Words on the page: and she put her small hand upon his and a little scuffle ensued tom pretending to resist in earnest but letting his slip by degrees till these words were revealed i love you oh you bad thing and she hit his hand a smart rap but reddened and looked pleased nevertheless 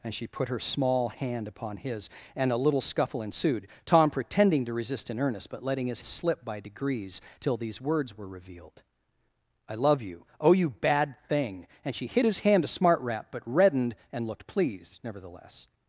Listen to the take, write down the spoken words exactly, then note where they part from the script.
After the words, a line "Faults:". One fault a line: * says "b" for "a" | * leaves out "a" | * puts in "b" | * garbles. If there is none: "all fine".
and she put her small hand upon his and a little scuffle ensued tom pretending to resist in earnest but letting his slip by degrees till these words were revealed i love you oh you bad thing and she hit his hand a smart rap but reddened and looked pleased nevertheless
Faults:
all fine